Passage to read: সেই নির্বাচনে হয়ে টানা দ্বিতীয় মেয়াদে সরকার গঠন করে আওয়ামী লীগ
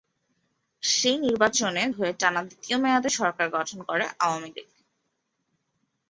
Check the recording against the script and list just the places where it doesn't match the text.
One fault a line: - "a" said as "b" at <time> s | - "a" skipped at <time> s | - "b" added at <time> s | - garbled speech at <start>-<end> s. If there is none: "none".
none